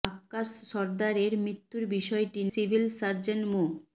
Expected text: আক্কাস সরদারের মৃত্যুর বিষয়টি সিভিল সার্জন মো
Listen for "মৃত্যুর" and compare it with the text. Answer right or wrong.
right